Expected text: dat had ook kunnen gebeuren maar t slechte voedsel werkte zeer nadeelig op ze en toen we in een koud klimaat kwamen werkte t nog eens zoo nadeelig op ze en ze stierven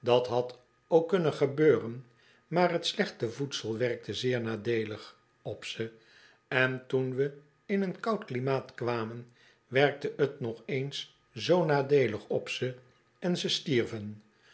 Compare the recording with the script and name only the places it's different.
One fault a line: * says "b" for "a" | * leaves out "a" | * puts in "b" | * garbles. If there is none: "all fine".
all fine